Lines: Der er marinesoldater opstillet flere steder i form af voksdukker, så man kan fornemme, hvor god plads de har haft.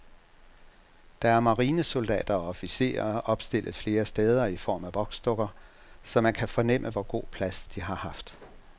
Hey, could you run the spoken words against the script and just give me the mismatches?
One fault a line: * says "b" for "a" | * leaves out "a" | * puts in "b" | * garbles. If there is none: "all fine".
* puts in "og officerer"